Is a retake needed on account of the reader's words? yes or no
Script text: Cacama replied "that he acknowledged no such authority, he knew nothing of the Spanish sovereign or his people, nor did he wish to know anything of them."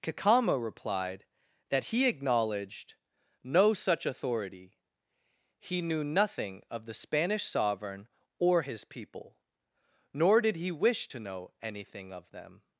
no